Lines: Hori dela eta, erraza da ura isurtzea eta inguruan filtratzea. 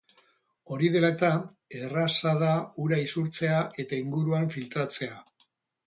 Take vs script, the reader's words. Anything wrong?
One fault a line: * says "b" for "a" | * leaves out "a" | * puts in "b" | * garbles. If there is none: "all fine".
all fine